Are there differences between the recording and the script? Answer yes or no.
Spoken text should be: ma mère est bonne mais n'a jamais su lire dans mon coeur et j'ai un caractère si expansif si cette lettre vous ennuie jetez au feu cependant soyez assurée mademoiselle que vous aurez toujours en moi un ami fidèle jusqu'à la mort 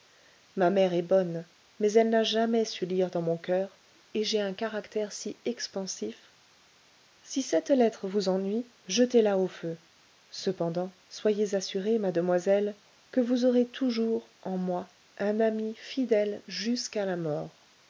yes